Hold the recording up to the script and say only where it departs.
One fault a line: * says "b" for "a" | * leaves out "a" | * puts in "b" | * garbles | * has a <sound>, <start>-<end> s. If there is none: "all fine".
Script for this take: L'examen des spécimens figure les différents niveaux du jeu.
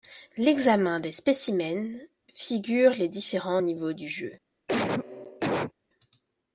* has a cough, 4.7-5.7 s